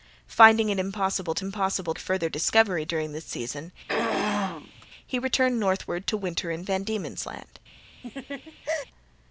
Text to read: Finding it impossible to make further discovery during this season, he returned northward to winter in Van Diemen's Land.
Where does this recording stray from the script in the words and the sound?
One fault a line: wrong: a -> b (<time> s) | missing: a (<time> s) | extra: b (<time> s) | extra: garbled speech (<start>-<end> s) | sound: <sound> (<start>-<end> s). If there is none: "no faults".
wrong: make -> impossible (1.4 s)
sound: throat clearing (3.9-4.9 s)
sound: laugh (8.0-8.9 s)